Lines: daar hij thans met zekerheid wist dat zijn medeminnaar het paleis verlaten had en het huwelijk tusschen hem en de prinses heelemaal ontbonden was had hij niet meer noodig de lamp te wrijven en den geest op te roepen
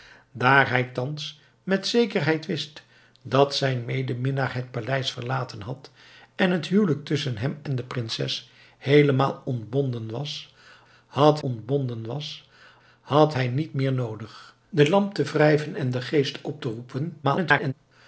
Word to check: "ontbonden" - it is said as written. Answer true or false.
true